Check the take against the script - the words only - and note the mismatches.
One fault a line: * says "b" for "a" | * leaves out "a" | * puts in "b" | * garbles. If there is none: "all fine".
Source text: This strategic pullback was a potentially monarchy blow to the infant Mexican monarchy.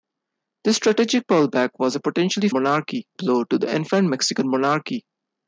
all fine